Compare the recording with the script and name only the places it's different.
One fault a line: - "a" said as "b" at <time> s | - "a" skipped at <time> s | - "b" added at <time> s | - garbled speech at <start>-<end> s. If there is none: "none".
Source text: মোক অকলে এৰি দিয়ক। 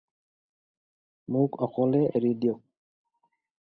none